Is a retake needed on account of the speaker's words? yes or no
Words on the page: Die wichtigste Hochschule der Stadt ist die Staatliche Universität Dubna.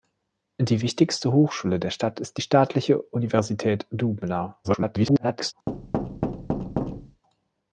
yes